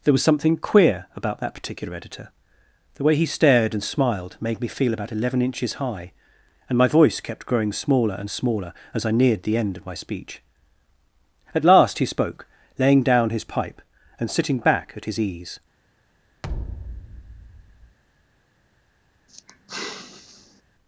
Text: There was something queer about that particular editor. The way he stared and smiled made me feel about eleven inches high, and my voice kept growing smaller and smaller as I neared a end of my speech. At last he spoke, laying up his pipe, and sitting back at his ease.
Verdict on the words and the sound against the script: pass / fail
fail